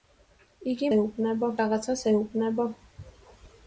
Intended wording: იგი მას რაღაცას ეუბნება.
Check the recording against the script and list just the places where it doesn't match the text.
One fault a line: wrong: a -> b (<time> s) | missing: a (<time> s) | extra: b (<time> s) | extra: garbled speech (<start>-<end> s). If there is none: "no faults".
wrong: მას -> ეუბნება (1.0 s)